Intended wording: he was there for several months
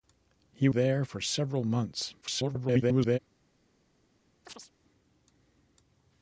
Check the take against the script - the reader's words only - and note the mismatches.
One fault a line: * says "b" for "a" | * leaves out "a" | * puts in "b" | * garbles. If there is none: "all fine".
* leaves out "was"
* garbles